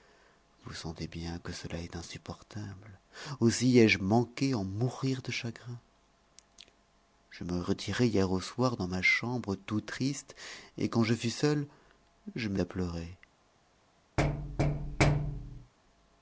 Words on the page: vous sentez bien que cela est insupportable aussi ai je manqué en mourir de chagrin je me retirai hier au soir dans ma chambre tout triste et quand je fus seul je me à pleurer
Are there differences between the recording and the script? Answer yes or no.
no